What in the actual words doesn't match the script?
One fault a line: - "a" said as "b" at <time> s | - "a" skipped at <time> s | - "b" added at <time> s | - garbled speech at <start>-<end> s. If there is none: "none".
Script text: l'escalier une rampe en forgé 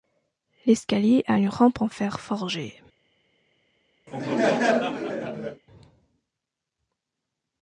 - "a" added at 1.3 s
- "fer" added at 1.9 s